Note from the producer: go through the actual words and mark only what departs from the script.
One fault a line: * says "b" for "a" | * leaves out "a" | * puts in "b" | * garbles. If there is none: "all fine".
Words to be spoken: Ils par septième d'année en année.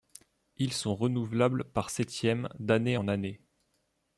* puts in "sont renouvelables"